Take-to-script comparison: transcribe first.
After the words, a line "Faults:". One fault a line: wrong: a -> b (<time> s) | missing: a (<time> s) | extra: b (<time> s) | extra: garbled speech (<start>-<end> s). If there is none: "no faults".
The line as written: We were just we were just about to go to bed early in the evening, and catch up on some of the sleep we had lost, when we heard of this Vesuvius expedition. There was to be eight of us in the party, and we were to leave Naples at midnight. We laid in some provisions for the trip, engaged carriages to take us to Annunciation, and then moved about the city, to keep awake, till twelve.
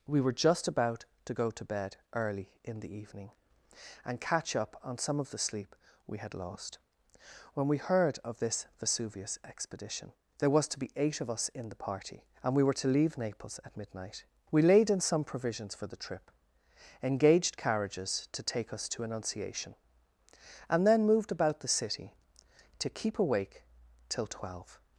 We were just about to go to bed early in the evening, and catch up on some of the sleep we had lost, when we heard of this Vesuvius expedition. There was to be eight of us in the party, and we were to leave Naples at midnight. We laid in some provisions for the trip, engaged carriages to take us to Annunciation, and then moved about the city, to keep awake, till twelve.
Faults:
missing: we were just (0.7 s)